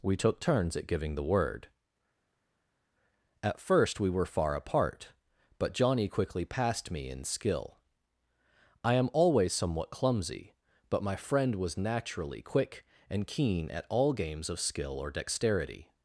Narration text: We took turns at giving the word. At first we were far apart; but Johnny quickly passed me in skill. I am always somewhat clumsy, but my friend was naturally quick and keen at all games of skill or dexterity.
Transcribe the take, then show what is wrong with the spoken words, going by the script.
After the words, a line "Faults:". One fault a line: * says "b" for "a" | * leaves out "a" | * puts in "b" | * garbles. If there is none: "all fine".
We took turns at giving the word. At first we were far apart; but Johnny quickly passed me in skill. I am always somewhat clumsy, but my friend was naturally quick and keen at all games of skill or dexterity.
Faults:
all fine